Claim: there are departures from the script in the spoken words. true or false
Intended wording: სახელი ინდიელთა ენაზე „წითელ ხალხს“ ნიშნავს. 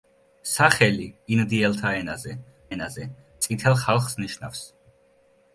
true